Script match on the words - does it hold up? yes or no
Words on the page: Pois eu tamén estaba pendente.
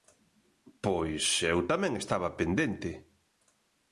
yes